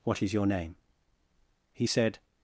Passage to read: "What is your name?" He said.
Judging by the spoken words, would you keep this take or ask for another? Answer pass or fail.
pass